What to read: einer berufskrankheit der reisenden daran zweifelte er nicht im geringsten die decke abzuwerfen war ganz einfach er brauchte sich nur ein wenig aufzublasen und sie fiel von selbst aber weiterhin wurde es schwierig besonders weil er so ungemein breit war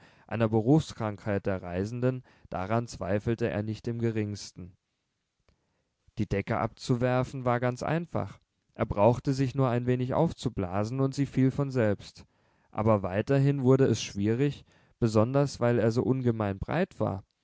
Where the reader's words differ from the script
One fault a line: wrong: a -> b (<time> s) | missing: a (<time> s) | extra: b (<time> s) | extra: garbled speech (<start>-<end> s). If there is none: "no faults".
no faults